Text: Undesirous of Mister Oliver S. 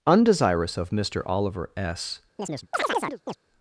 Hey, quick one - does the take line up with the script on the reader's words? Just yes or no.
yes